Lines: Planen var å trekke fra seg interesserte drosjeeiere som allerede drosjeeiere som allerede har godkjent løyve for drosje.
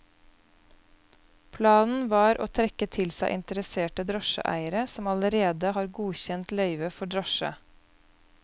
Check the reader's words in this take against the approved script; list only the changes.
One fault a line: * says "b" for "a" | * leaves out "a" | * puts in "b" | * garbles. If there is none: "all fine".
* says "til" for "fra"
* leaves out "drosjeeiere som allerede"